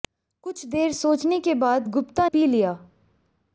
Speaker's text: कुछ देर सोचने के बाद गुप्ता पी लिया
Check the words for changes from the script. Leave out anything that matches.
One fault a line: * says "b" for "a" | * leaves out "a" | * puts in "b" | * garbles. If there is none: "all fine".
all fine